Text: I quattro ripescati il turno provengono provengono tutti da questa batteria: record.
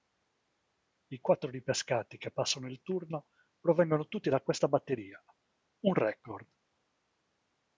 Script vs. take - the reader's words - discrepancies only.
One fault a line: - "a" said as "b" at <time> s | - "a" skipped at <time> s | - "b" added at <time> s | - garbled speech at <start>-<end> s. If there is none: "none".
- "che passano" added at 2.2 s
- "provengono" skipped at 4.1 s
- "un" added at 5.8 s